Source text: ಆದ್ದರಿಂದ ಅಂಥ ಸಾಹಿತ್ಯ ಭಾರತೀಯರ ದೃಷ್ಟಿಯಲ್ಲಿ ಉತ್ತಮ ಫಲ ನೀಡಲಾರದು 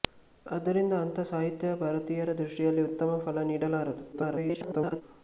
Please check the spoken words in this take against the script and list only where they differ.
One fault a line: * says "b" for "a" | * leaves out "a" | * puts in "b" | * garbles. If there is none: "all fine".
* garbles